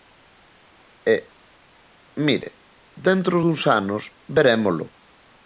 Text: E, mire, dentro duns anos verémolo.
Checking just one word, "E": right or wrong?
right